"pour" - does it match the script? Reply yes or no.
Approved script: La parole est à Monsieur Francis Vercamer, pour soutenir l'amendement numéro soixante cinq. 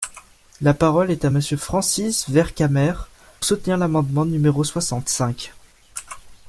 no